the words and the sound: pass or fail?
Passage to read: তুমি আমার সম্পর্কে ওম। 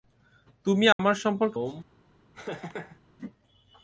fail